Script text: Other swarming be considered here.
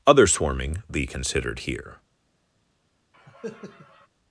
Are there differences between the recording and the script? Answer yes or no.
no